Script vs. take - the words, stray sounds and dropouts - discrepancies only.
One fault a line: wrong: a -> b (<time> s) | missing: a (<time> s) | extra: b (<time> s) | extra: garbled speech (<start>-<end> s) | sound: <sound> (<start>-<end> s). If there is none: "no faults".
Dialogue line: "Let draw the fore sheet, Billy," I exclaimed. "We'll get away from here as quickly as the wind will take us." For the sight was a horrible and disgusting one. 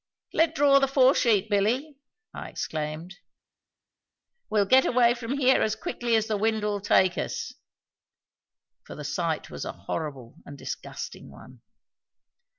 no faults